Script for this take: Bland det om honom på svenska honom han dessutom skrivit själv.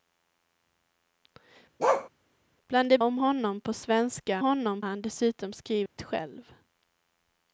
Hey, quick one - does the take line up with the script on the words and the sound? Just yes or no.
no